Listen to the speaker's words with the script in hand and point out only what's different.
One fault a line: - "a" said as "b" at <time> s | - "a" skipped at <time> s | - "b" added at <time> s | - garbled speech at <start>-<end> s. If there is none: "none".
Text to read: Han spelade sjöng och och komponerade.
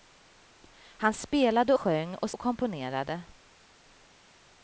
none